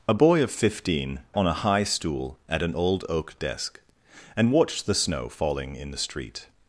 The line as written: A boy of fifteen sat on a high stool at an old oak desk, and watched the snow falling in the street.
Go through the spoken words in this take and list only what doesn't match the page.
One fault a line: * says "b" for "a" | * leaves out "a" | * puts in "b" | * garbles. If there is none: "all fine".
* leaves out "sat"